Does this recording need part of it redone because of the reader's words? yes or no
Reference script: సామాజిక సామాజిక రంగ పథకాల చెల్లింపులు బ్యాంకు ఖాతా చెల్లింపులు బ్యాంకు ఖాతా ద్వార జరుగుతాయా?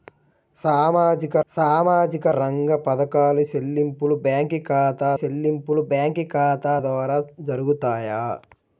no